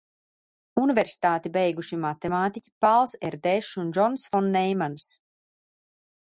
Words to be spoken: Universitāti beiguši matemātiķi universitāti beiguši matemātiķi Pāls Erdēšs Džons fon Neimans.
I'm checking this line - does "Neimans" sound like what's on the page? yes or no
yes